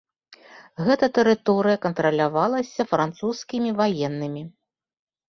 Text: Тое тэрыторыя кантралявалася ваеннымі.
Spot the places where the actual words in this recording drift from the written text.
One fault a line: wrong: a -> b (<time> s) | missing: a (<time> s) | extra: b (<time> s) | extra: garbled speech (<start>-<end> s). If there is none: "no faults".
wrong: Тое -> Гэта (0.8 s)
extra: французскімі (2.9 s)